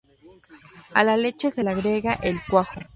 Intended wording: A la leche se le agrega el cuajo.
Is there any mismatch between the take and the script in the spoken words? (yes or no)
no